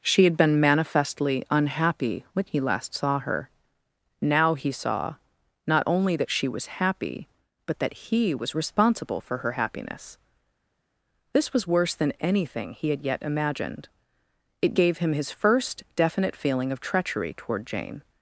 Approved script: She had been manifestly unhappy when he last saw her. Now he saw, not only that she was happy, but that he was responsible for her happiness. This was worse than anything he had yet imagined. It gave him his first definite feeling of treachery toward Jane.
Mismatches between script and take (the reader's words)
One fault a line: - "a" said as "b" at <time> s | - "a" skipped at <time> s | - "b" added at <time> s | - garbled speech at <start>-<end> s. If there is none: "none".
none